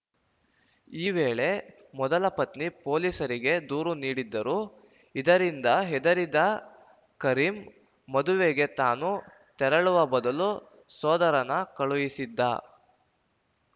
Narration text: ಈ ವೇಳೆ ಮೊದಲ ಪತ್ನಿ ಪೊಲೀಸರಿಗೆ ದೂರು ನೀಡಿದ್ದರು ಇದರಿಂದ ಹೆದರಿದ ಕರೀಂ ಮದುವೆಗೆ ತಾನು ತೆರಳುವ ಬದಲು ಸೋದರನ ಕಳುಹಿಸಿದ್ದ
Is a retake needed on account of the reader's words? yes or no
no